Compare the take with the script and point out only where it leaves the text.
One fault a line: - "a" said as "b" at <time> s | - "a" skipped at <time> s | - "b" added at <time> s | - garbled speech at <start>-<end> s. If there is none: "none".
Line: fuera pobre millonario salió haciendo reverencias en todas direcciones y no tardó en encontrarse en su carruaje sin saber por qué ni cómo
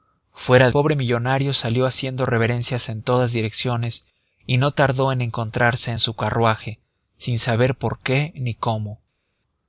none